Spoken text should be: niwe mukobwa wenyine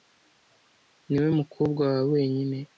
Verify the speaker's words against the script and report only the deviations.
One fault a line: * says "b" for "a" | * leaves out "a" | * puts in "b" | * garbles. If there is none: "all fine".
* puts in "wawe"